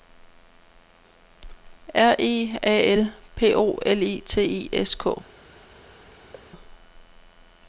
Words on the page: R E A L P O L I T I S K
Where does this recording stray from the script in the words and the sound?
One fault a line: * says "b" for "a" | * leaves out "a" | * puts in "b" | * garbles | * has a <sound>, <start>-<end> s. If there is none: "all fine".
* has a thud, 6.3-6.5 s